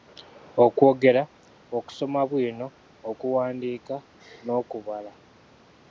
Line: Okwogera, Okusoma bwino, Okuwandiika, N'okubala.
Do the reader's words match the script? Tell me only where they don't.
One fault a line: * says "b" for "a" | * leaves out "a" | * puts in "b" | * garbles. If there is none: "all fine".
all fine